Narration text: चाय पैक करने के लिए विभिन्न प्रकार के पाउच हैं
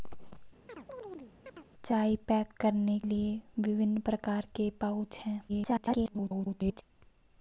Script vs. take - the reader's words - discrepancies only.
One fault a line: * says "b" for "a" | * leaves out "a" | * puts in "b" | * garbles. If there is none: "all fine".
* leaves out "के"
* garbles